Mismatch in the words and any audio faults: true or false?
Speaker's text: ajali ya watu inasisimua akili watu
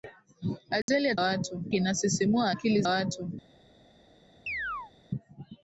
true